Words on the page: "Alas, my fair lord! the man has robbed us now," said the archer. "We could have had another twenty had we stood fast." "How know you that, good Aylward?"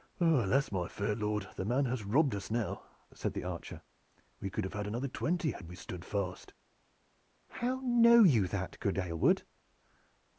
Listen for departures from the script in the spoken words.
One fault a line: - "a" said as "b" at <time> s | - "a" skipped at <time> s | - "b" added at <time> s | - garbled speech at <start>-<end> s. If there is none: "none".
none